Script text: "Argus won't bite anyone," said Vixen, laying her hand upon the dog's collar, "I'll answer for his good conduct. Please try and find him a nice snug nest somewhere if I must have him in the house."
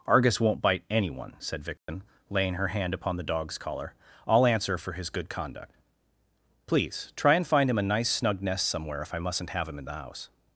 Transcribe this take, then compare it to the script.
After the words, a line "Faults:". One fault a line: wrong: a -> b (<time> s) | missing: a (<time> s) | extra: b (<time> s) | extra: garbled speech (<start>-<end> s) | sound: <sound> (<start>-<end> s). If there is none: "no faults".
"Argus won't bite anyone," said Vixen, laying her hand upon the dog's collar, "I'll answer for his good conduct. Please try and find him a nice snug nest somewhere if I mustn't have him in the house."
Faults:
sound: dropout (1.8-1.9 s)
wrong: must -> mustn't (9.2 s)